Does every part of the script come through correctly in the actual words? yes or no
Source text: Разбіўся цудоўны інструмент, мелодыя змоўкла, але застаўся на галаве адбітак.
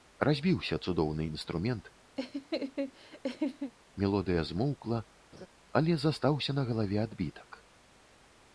yes